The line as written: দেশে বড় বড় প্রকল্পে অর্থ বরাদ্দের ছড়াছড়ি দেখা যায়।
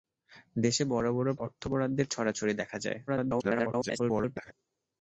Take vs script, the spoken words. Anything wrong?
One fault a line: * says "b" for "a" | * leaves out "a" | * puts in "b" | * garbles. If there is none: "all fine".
* leaves out "প্রকল্পে"
* garbles